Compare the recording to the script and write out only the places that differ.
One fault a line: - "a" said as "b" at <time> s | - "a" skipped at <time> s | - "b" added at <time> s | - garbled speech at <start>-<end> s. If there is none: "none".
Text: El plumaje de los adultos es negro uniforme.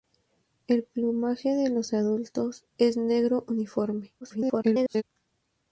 - garbled speech at 4.2-5.0 s